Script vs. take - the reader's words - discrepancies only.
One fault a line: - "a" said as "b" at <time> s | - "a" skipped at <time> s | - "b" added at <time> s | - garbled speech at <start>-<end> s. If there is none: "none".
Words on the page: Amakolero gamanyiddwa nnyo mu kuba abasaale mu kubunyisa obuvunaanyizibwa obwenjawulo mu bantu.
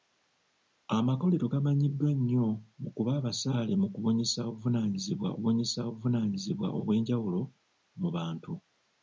- "kubunyisa obuvunaanyizibwa" added at 5.3 s